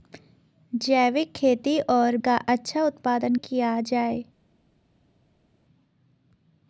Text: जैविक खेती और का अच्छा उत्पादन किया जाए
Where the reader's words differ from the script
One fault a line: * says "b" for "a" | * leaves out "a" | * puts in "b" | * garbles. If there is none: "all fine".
all fine